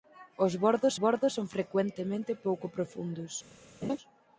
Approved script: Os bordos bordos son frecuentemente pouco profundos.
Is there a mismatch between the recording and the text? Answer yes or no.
no